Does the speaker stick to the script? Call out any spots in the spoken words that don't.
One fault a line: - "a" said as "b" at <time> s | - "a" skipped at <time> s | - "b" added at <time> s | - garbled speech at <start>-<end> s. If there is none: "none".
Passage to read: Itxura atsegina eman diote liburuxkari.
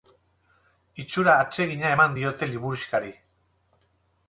none